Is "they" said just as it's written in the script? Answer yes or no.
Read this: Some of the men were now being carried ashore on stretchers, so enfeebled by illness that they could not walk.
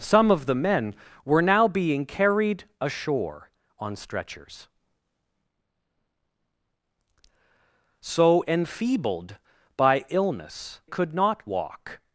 no